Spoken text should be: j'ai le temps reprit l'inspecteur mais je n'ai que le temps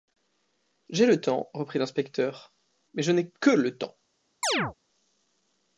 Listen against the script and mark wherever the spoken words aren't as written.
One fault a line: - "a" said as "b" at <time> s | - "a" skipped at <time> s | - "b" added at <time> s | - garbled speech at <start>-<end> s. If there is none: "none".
none